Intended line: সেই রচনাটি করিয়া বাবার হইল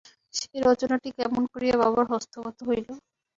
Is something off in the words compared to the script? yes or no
yes